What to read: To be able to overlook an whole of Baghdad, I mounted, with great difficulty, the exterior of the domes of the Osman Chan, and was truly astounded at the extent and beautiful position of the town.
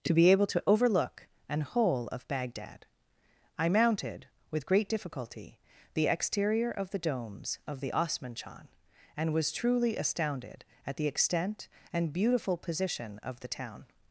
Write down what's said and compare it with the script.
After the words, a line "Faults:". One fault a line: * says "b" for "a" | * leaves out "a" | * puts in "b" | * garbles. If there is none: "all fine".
To be able to overlook an whole of Baghdad, I mounted, with great difficulty, the exterior of the domes of the Osman Chan, and was truly astounded at the extent and beautiful position of the town.
Faults:
all fine